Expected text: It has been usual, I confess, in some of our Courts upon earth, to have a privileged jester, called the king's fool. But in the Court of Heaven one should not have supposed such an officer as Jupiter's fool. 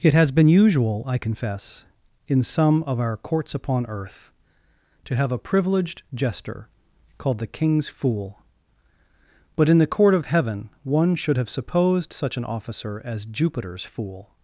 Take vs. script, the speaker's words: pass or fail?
fail